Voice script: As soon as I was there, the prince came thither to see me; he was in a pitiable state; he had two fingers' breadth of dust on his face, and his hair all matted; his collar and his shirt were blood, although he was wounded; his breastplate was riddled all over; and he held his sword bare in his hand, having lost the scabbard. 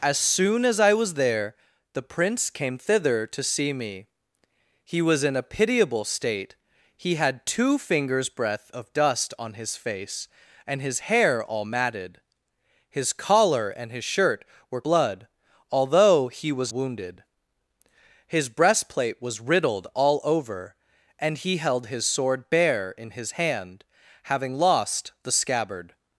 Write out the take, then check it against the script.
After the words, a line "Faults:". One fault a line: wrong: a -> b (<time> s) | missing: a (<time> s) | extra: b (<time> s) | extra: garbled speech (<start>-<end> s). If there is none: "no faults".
As soon as I was there, the prince came thither to see me; he was in a pitiable state; he had two fingers' breadth of dust on his face, and his hair all matted; his collar and his shirt were blood, although he was wounded; his breastplate was riddled all over; and he held his sword bare in his hand, having lost the scabbard.
Faults:
no faults